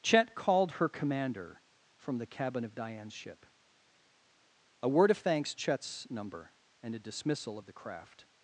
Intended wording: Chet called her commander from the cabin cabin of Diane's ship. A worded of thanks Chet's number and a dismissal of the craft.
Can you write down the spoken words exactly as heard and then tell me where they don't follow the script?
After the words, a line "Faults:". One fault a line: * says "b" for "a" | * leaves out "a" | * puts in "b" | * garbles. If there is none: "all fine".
Chet called her commander from the cabin of Diane's ship. A word of thanks Chet's number and a dismissal of the craft.
Faults:
* leaves out "cabin"
* says "word" for "worded"